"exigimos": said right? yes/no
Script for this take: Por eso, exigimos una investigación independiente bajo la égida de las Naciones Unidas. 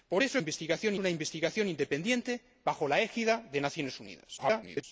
no